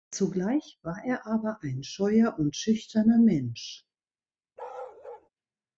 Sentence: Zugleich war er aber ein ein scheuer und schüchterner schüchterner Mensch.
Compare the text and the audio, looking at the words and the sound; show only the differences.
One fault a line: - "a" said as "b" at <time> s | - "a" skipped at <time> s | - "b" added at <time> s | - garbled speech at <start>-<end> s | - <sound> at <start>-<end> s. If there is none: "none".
- "ein" skipped at 1.8 s
- "schüchterner" skipped at 3.2 s
- bark at 4.6-5.3 s